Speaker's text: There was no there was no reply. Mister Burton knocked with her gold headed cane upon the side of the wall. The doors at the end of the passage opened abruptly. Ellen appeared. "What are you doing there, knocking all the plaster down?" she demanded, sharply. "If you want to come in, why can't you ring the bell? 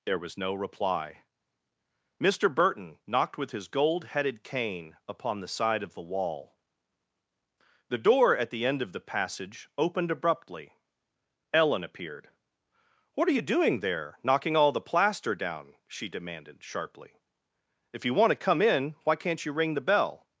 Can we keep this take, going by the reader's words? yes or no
no